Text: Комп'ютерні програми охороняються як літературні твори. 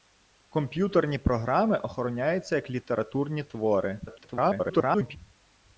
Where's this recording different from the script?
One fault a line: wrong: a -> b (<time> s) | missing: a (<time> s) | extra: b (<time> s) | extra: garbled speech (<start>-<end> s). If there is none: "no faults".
extra: garbled speech (4.1-5.2 s)